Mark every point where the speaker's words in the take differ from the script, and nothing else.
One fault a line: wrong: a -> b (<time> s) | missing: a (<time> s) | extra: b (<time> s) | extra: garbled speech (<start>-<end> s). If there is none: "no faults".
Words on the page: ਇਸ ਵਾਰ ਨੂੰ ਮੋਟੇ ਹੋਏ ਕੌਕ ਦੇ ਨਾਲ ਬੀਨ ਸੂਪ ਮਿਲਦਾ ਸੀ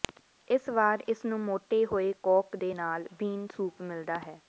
extra: ਇਸ (1.1 s)
wrong: ਸੀ -> ਹੈ (4.2 s)